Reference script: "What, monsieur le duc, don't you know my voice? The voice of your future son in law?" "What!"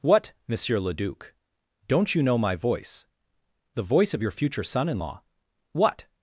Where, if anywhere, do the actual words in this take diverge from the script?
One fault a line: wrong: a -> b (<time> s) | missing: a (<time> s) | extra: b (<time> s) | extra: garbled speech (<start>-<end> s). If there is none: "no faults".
no faults